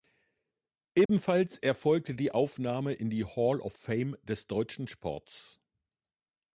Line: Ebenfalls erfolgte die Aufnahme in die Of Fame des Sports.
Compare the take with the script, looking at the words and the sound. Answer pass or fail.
fail